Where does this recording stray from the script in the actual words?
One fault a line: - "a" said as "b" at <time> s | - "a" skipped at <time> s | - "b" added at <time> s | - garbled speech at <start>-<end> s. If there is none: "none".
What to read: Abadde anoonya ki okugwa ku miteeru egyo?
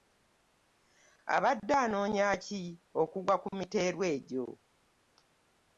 none